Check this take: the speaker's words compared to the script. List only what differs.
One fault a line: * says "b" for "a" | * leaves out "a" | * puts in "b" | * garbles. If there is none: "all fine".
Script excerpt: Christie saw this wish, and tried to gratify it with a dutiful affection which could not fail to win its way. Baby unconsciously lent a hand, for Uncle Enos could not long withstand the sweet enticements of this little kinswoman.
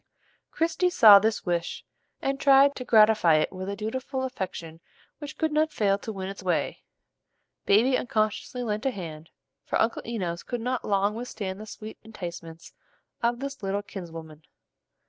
all fine